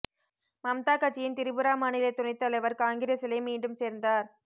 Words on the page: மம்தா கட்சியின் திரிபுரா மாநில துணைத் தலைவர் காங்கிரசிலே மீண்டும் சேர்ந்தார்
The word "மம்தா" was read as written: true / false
true